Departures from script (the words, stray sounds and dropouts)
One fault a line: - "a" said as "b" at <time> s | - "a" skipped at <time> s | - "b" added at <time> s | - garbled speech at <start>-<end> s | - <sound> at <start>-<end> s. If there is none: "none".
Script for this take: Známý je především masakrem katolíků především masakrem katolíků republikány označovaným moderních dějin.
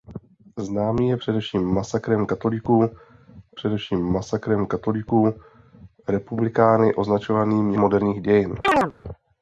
- chirp at 8.6-8.9 s